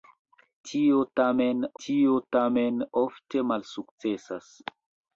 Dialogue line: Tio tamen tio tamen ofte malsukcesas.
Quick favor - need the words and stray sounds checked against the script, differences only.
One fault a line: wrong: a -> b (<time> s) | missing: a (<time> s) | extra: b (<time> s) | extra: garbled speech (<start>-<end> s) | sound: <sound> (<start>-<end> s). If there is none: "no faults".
no faults